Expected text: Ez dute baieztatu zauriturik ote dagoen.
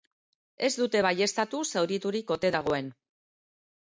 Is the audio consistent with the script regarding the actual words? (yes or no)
yes